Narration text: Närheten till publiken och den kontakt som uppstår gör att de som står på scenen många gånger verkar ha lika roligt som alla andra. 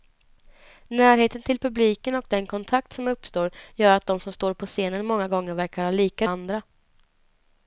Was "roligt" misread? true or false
true